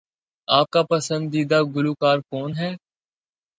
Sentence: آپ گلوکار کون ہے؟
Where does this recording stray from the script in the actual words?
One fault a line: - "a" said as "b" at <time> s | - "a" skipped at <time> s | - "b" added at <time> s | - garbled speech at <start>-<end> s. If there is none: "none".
- "کا پسندیدہ" added at 0.7 s